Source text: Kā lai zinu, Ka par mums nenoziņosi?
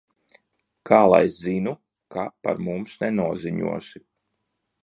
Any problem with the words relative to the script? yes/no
no